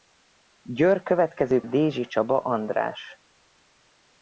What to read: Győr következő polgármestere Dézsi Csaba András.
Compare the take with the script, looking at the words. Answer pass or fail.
fail